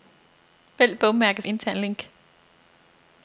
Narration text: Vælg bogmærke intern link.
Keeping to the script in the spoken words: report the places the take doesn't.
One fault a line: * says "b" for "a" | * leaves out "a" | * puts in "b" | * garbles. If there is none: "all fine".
all fine